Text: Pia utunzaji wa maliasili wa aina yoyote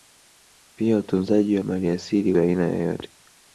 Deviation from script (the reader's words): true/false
false